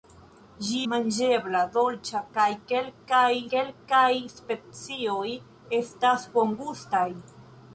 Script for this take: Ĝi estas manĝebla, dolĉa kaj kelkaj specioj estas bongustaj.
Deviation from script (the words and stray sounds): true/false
true